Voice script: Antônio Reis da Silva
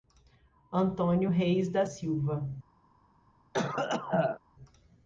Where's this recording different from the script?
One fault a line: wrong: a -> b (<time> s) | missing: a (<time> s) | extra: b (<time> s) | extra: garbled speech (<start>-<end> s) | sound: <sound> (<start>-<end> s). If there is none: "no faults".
sound: cough (3.5-4.4 s)